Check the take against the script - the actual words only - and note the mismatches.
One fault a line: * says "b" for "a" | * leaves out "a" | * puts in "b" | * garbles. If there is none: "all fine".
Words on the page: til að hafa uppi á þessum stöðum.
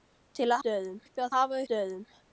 * says "stöðum" for "hafa"
* says "hafa" for "þessum"